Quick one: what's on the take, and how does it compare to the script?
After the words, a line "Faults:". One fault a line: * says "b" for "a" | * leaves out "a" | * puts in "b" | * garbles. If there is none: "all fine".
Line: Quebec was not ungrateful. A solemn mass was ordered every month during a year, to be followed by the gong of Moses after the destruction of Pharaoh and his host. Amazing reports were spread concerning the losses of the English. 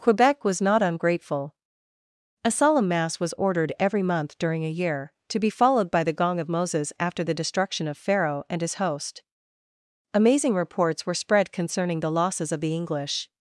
Quebec was not ungrateful. A solemn mass was ordered every month during a year, to be followed by the gong of Moses after the destruction of Pharaoh and his host. Amazing reports were spread concerning the losses of the English.
Faults:
all fine